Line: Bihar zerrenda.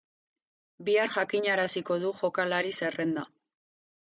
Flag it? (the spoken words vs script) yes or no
yes